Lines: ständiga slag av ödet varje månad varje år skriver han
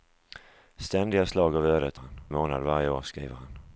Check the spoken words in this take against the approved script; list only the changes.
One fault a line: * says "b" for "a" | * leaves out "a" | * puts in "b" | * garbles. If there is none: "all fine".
* says "han" for "varje"